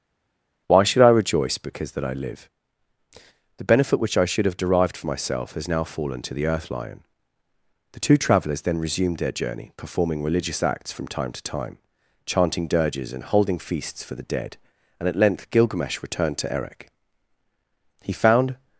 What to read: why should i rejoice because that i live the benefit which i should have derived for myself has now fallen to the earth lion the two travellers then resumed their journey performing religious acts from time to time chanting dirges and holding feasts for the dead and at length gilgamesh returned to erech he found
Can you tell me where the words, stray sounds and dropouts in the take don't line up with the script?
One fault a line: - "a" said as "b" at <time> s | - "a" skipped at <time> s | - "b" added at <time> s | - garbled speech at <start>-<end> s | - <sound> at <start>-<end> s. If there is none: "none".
none